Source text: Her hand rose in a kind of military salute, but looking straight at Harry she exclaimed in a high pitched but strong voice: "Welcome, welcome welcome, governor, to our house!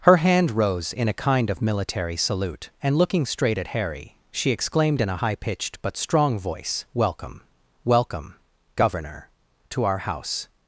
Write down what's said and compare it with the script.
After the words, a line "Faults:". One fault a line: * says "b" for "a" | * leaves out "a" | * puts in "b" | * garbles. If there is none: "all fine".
Her hand rose in a kind of military salute, and looking straight at Harry she exclaimed in a high pitched but strong voice: "Welcome, welcome, governor, to our house!
Faults:
* says "and" for "but"
* leaves out "welcome"